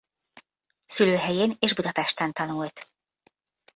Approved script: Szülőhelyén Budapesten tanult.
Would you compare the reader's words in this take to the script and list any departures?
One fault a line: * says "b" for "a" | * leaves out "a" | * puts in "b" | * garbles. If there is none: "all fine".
* puts in "és"